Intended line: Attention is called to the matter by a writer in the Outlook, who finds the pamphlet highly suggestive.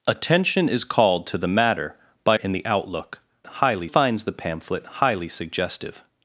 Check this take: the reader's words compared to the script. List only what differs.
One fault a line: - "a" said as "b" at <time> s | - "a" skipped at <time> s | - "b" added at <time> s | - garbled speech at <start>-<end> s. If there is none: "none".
- "a writer" skipped at 2.4 s
- "who" said as "highly" at 3.5 s